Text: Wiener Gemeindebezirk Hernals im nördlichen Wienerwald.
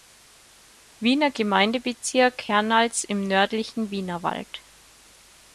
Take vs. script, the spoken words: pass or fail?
pass